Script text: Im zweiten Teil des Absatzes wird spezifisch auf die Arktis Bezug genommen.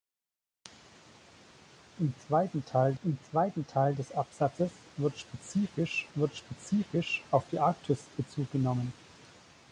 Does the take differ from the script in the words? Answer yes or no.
yes